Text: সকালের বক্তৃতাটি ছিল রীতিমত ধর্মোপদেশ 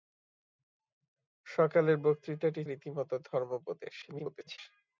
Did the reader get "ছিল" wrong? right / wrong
wrong